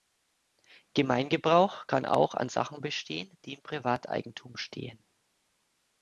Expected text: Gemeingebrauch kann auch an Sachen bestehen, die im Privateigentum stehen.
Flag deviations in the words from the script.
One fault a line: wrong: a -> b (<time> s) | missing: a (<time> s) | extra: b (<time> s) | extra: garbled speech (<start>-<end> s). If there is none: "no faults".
no faults